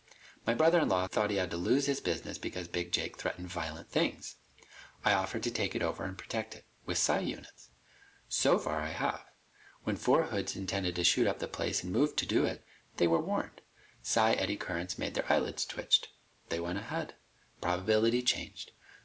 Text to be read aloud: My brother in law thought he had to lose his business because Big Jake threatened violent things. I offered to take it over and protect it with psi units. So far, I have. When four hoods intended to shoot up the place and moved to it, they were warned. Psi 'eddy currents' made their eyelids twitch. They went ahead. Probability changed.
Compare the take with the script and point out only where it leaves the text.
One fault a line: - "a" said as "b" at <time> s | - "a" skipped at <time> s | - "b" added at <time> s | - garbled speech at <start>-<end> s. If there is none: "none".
- "do" added at 12.2 s